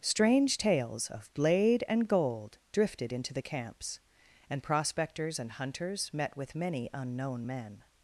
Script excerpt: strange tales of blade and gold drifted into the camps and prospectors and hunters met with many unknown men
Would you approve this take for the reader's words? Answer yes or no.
yes